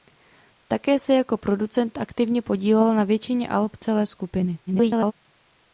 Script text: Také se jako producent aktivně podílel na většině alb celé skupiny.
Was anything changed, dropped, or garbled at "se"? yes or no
no